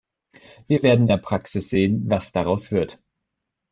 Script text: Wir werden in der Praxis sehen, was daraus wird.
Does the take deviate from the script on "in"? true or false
true